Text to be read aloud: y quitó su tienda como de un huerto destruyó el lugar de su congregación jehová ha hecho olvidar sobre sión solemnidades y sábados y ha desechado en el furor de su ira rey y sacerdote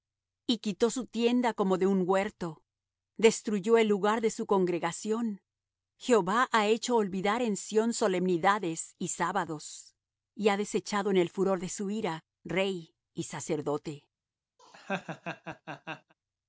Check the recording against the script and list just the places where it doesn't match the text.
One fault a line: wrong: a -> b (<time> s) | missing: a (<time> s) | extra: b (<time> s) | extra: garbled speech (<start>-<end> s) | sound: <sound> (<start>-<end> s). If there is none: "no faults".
wrong: sobre -> en (7.4 s)
sound: laugh (14.6-16.1 s)